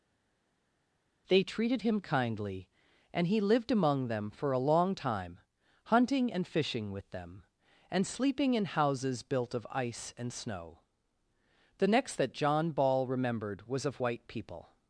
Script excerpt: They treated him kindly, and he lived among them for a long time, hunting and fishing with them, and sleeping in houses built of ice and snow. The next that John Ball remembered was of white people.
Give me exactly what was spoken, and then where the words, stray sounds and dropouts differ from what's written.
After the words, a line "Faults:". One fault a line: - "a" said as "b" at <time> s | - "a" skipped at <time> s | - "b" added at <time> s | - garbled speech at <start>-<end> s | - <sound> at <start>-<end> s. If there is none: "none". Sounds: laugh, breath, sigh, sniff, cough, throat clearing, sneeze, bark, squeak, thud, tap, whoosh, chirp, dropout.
They treated him kindly, and he lived among them for a long time, hunting and fishing with them, and sleeping in houses built of ice and snow. The next that John Ball remembered was of white people.
Faults:
none